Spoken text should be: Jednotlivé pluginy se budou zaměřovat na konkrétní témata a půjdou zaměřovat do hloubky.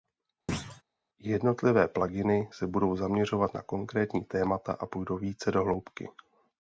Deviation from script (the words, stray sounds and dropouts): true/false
true